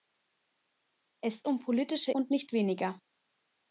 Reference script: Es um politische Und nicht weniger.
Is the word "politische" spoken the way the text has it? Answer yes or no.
yes